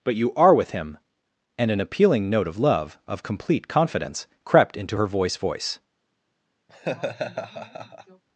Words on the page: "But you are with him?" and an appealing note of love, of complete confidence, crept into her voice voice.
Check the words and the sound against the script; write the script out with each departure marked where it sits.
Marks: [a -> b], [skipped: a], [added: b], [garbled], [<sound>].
"But you are with him?" and an appealing note of love, of complete confidence, crept into her voice voice. [laugh]